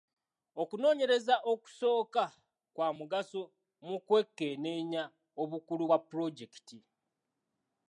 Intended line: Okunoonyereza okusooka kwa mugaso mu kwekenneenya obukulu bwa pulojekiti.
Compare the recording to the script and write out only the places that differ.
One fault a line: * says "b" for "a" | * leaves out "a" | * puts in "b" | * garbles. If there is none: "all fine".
all fine